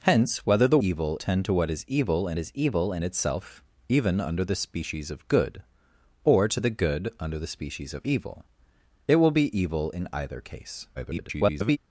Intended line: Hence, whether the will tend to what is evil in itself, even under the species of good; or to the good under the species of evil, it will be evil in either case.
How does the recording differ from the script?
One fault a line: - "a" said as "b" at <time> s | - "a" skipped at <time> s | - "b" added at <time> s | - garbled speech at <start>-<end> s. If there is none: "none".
- "will" said as "evil" at 0.8 s
- "is evil in" added at 2.4 s
- garbled speech at 11.0-11.8 s